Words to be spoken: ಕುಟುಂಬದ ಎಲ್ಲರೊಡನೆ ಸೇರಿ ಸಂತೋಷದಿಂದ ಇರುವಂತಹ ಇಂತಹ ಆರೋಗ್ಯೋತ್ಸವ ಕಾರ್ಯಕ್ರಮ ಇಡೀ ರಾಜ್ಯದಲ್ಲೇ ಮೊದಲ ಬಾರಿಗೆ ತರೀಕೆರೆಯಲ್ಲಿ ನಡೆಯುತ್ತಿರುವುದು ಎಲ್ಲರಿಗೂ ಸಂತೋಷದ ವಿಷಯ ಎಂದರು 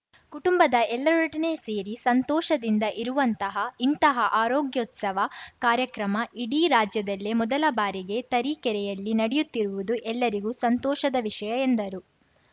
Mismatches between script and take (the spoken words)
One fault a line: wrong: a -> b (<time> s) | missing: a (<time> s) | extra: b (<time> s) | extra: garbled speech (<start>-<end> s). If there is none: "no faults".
no faults